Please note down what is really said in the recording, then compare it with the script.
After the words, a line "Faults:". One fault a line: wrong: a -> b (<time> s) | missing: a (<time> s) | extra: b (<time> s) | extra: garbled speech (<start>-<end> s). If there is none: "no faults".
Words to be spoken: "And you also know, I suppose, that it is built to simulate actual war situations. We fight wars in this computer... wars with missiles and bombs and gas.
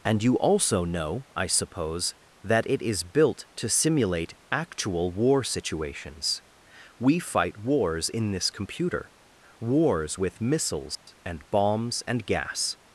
"And you also know, I suppose, that it is built to simulate actual war situations. We fight wars in this computer... wars with missiles and bombs and gas.
Faults:
no faults